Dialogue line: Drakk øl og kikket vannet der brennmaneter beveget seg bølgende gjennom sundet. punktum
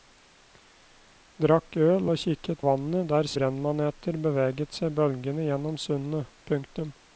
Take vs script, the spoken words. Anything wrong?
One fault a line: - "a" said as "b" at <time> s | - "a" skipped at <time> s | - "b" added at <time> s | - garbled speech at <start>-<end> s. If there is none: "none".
none